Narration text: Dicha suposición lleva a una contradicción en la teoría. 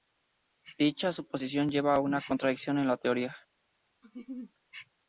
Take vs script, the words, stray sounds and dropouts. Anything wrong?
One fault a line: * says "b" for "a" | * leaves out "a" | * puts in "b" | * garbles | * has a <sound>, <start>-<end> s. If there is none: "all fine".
* has a laugh, 4.0-4.5 s